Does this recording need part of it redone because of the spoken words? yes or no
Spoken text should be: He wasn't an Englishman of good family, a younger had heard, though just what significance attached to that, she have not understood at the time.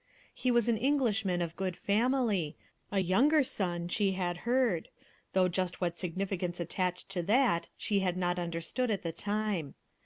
yes